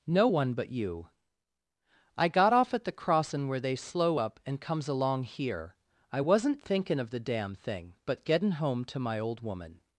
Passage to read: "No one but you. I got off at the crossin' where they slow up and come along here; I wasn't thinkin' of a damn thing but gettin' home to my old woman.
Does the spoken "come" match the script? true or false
false